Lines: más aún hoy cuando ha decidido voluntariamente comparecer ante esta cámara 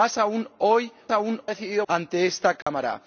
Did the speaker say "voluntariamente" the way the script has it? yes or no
no